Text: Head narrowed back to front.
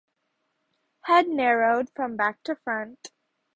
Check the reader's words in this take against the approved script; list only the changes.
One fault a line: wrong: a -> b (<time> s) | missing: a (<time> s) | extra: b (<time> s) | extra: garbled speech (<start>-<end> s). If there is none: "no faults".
extra: from (1.9 s)